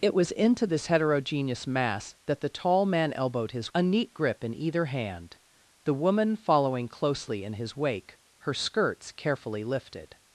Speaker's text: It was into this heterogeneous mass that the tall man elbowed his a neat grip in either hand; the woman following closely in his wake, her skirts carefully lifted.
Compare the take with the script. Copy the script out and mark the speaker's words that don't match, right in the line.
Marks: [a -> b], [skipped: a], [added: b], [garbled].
It was into this heterogeneous mass that the tall man elbowed his a neat grip in either hand; the woman following closely in his wake, her skirts carefully lifted.